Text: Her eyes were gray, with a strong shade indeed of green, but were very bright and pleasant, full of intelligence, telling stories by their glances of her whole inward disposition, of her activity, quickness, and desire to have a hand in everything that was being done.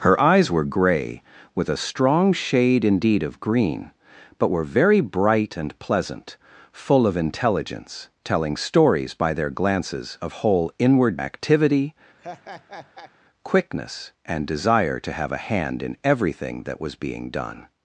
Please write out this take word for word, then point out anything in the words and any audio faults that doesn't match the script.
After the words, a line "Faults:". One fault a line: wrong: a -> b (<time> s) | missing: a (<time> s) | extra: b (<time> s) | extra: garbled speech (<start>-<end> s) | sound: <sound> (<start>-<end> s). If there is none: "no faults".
Her eyes were gray, with a strong shade indeed of green, but were very bright and pleasant, full of intelligence, telling stories by their glances of whole inward activity, quickness, and desire to have a hand in everything that was being done.
Faults:
missing: her (10.3 s)
missing: disposition of her (11.2 s)
sound: laugh (12.2-13.1 s)